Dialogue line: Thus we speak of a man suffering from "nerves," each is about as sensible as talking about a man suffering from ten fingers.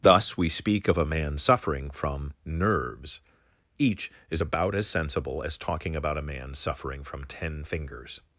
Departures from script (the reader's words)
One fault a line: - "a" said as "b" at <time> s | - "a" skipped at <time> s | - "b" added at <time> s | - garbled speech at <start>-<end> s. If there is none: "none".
none